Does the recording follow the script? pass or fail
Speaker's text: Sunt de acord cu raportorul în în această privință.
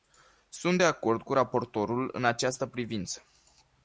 fail